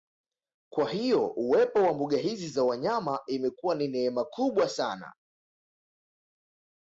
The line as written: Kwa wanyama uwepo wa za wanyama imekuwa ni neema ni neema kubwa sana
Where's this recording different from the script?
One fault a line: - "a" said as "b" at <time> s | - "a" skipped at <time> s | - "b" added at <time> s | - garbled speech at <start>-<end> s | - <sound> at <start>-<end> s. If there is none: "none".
- "wanyama" said as "hiyo" at 0.9 s
- "mbuga hizi" added at 1.9 s
- "ni neema" skipped at 4.2 s